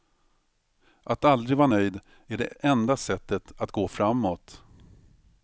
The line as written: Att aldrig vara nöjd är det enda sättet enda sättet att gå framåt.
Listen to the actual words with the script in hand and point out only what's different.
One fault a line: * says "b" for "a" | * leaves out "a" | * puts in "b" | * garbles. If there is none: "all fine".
* leaves out "enda sättet"